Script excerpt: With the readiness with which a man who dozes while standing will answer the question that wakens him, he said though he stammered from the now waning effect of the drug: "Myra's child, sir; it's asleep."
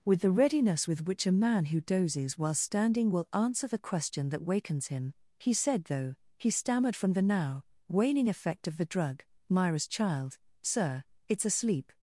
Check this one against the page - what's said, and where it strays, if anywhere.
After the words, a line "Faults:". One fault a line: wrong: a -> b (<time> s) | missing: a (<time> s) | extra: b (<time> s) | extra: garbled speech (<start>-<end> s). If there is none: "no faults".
With the readiness with which a man who dozes while standing will answer the question that wakens him, he said though he stammered from the now waning effect of the drug: "Myra's child, sir; it's asleep."
Faults:
no faults